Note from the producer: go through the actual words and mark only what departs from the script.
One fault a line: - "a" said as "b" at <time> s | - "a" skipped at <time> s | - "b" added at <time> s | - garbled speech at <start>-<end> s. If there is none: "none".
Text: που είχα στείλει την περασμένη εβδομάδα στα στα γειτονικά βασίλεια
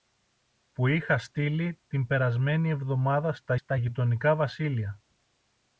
none